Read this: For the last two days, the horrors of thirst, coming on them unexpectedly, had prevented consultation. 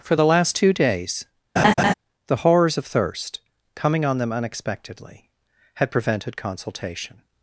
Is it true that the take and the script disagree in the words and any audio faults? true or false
true